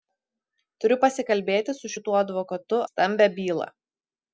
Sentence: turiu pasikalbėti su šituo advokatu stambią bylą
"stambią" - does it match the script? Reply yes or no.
yes